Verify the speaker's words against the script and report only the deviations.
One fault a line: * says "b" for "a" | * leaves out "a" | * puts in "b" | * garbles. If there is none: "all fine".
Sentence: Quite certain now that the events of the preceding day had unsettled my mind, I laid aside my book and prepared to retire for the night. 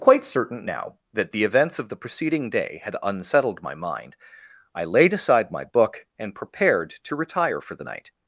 all fine